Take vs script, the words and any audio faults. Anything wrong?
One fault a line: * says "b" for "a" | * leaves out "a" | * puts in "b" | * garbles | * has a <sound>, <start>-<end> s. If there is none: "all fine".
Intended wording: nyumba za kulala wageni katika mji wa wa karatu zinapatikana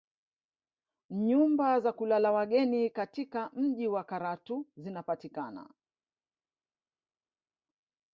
* leaves out "wa"